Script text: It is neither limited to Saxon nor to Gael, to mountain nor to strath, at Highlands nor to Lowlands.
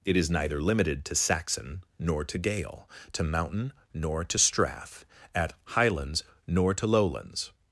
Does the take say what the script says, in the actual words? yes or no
yes